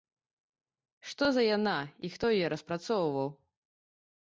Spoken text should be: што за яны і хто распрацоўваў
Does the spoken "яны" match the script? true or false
false